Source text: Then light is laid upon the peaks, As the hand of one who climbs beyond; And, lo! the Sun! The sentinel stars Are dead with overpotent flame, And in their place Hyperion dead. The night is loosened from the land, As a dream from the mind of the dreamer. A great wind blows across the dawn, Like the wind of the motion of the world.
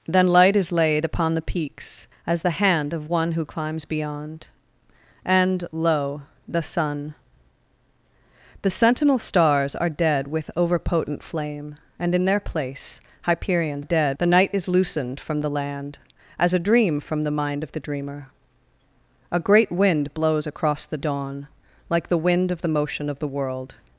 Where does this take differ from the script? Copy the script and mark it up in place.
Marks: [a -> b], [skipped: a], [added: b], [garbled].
Then light is laid upon the peaks, As the hand of one who climbs beyond; And, lo! the Sun! The sentinel stars Are dead with overpotent flame, And in their place Hyperion dead. The night is loosened from the land, As a dream from the mind of the dreamer. A great wind blows across the dawn, Like the wind of the motion of the world.